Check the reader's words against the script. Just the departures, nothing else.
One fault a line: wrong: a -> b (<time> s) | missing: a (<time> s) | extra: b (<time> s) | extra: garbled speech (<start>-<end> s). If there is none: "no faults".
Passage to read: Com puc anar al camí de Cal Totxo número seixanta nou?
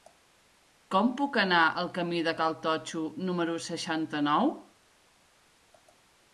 no faults